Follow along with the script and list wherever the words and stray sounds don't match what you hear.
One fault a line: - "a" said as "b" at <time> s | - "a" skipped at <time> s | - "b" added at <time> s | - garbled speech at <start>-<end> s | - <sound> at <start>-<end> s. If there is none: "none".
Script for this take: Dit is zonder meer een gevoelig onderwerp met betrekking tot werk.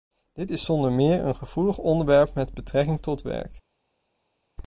none